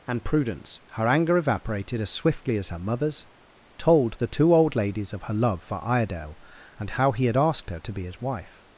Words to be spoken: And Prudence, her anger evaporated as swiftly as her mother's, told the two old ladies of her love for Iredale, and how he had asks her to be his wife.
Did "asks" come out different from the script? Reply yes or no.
yes